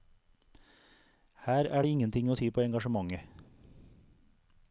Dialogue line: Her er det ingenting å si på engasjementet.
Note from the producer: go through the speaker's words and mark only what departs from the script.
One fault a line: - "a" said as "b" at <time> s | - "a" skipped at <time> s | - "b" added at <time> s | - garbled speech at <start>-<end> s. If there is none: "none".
none